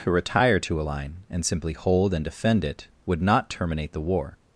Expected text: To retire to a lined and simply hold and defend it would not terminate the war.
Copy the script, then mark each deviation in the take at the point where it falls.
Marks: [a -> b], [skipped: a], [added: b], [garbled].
To retire to a [lined -> line] and simply hold and defend it would not terminate the war.